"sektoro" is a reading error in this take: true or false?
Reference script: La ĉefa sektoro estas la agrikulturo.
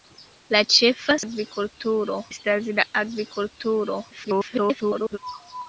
true